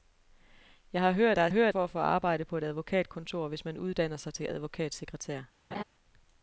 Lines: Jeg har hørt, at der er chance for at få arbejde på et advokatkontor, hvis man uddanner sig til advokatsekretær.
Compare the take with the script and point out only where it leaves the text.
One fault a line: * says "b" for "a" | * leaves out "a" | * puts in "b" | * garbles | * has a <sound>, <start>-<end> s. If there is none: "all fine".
* leaves out "at"
* says "hørt" for "chance"
* has a laugh, 5.7-5.8 s